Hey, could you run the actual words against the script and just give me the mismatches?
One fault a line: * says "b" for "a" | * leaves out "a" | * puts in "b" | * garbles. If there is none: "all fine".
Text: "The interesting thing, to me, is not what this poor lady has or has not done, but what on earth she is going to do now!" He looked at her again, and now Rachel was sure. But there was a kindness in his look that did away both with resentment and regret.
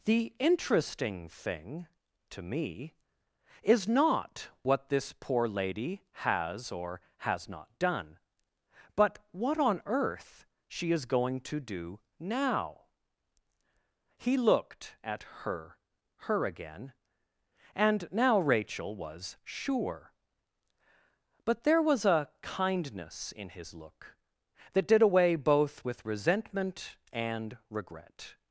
* puts in "her"